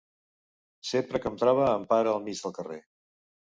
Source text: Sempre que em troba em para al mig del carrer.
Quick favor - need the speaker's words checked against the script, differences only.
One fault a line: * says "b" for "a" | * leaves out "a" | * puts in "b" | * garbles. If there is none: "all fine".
all fine